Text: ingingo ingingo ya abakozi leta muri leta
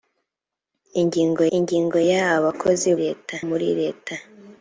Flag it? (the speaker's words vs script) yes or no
no